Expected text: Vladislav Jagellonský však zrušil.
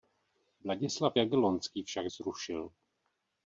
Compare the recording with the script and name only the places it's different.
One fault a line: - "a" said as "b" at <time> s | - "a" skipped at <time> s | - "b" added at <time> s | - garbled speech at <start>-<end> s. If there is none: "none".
none